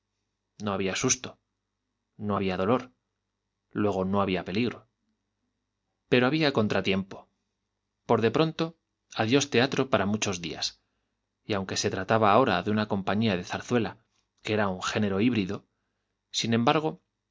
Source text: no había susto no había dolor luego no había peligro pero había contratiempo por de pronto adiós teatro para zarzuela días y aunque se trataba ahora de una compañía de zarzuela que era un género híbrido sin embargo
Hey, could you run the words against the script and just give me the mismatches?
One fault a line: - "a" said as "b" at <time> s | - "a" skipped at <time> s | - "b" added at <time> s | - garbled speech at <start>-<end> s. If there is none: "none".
- "zarzuela" said as "muchos" at 10.0 s